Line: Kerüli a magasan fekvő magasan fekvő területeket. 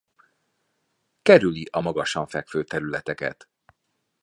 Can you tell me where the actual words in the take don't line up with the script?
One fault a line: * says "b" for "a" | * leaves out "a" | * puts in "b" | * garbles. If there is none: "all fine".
* leaves out "magasan fekvő"